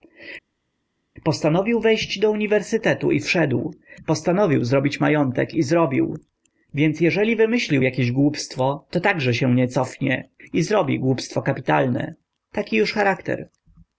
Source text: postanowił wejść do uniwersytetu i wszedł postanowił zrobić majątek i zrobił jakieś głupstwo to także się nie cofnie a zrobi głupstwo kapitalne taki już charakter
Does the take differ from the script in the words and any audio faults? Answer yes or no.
yes